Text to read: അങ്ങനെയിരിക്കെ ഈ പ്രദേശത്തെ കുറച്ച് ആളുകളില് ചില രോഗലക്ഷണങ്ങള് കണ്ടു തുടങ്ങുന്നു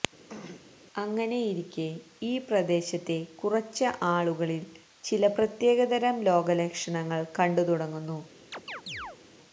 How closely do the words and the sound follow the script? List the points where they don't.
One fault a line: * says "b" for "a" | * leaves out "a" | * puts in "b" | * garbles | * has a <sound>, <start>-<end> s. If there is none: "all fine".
* has a throat clearing, 0.3-0.7 s
* puts in "പ്രത്യേകതരം"
* has a chirp, 8.5-9.2 s